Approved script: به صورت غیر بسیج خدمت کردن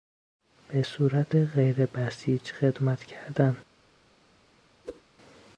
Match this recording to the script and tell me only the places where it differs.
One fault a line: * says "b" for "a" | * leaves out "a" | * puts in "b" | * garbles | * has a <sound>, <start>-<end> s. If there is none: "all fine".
* has a whoosh, 4.8-5.0 s